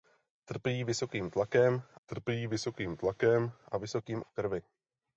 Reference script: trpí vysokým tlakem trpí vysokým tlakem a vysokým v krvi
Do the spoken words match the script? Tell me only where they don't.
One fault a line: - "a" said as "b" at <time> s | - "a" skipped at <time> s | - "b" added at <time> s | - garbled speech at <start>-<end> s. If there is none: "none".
none